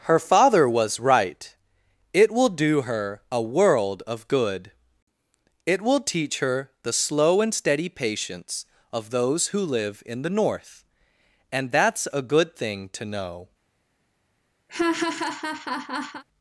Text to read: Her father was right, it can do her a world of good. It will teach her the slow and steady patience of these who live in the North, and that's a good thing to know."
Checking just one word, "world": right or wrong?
right